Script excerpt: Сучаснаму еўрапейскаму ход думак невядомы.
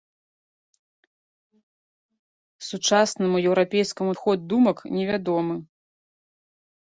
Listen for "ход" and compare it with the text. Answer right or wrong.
right